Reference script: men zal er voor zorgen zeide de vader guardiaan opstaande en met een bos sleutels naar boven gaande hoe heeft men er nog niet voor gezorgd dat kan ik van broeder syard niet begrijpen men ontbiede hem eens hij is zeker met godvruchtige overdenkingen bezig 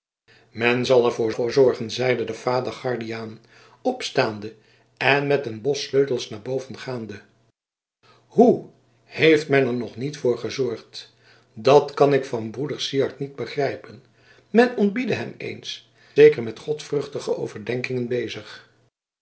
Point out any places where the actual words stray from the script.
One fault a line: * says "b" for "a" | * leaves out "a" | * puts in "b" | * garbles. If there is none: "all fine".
* puts in "voor"
* leaves out "hij is"